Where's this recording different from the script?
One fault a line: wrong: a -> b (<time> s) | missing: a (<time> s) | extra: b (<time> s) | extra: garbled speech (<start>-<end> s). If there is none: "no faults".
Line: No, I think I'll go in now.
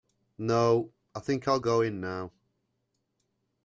no faults